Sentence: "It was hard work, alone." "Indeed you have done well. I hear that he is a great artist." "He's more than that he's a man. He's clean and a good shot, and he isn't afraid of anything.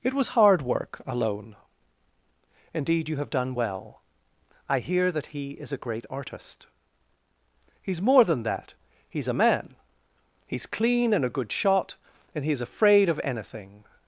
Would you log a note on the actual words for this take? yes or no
yes